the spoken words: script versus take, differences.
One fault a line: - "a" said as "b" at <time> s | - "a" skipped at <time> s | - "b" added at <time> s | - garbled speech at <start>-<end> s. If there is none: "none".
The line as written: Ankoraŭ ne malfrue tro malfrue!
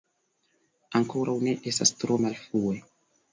- "malfrue" said as "estas" at 1.7 s